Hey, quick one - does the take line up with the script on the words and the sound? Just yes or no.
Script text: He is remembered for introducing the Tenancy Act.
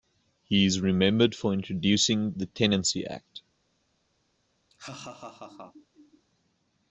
no